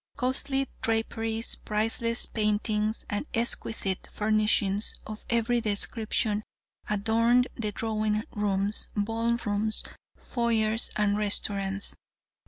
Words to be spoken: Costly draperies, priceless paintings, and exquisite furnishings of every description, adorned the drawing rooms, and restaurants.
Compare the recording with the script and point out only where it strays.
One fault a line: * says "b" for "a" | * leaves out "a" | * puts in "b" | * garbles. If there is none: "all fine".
* puts in "ball rooms foyers"